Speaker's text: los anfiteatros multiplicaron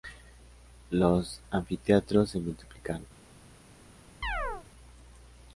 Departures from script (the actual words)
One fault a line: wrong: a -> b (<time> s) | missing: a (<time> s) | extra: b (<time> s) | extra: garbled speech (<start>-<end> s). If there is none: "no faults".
extra: se (2.3 s)